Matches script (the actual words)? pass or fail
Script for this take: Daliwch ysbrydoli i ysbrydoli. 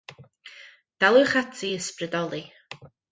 fail